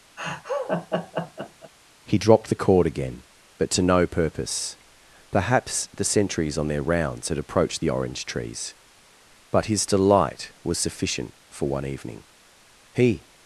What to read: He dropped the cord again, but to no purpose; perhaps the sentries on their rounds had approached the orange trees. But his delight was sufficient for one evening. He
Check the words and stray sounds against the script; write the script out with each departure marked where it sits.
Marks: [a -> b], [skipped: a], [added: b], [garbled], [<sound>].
[laugh] He dropped the cord again, but to no purpose; perhaps the sentries on their rounds had approached the orange trees. But his delight was sufficient for one evening. He